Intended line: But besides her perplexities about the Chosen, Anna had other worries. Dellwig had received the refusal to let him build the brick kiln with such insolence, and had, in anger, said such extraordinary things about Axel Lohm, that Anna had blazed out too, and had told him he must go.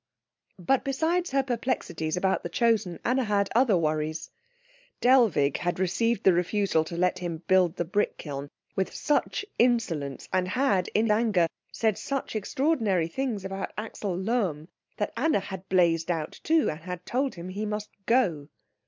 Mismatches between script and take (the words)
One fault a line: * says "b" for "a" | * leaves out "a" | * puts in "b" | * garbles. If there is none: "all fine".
all fine